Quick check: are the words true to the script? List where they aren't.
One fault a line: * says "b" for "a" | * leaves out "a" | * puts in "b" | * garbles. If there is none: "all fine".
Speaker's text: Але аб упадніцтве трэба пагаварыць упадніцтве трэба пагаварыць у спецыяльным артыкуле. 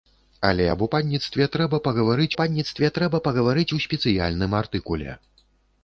all fine